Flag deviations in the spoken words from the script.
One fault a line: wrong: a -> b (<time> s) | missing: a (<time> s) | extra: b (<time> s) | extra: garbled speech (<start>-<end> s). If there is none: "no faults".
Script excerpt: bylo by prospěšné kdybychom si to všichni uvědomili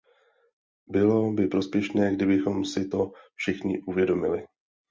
no faults